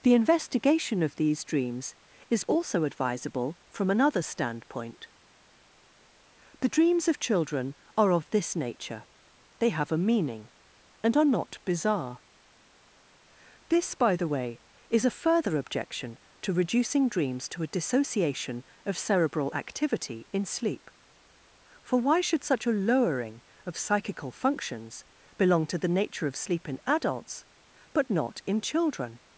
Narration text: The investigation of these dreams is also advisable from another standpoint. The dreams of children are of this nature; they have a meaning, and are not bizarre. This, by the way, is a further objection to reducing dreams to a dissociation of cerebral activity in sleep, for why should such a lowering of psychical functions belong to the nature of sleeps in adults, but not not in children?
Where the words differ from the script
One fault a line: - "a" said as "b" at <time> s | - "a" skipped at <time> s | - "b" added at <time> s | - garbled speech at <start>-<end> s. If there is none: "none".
- "sleeps" said as "sleep" at 26.4 s
- "not" skipped at 28.4 s